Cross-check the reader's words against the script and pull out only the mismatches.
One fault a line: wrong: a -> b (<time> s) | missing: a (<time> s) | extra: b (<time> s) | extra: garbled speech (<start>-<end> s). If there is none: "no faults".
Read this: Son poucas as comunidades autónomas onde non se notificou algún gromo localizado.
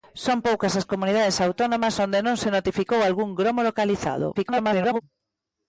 extra: garbled speech (4.4-5.0 s)